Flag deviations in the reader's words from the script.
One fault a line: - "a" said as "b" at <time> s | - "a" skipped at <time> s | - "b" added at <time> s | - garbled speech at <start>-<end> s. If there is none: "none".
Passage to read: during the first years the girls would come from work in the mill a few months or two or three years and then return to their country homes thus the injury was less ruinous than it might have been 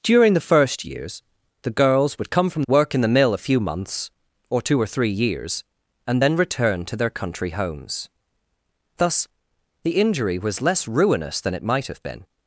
none